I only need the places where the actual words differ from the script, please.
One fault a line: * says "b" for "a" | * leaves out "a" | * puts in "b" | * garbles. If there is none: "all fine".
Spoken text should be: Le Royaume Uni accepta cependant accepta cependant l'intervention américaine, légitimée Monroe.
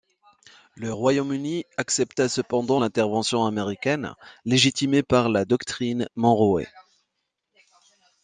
* leaves out "accepta cependant"
* puts in "par la doctrine"